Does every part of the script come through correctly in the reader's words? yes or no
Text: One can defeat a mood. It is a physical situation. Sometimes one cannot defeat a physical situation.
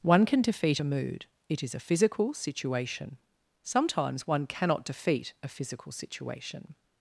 yes